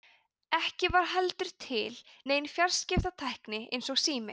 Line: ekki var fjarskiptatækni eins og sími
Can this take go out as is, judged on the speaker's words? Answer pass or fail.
fail